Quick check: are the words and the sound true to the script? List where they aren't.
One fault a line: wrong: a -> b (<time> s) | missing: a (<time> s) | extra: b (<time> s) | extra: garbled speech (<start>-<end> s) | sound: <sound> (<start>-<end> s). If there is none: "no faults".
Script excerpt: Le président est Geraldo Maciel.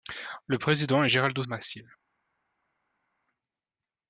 no faults